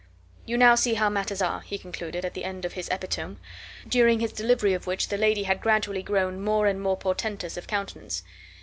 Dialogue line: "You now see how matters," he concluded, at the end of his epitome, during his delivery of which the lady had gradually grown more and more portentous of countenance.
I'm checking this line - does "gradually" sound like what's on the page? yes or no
yes